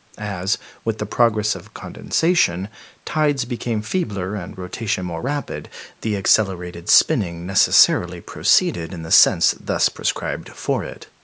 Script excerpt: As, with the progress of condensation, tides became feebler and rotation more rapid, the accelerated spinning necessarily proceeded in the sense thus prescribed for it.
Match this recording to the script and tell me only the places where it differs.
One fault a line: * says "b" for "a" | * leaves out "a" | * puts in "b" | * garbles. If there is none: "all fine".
all fine